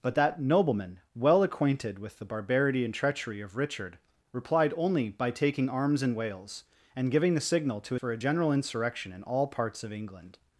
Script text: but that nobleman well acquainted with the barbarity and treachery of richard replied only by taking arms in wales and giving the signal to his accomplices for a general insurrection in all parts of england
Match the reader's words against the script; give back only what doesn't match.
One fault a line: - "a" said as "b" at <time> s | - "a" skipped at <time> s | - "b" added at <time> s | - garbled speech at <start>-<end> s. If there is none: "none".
- "his accomplices" skipped at 8.0 s